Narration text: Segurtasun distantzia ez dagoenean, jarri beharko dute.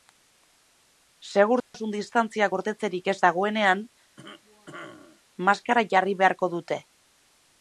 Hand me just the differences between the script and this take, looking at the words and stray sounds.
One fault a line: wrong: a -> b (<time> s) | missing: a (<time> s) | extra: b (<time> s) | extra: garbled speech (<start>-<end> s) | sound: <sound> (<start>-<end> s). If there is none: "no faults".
sound: dropout (1.6-1.7 s)
extra: gordetzerik (2.5 s)
sound: cough (4.2-5.2 s)
extra: maskara (5.5 s)